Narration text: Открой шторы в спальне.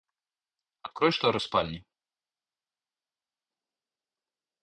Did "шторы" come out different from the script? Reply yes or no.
no